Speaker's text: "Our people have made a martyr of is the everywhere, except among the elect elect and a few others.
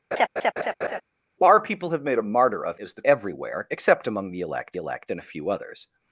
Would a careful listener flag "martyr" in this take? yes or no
no